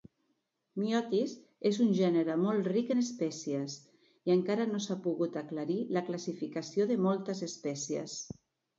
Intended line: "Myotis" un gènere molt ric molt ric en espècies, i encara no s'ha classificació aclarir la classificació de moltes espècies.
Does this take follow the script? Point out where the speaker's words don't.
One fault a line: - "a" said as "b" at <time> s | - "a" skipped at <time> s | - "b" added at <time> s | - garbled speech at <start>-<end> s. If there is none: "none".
- "és" added at 1.7 s
- "molt ric" skipped at 2.9 s
- "classificació" said as "pogut" at 5.1 s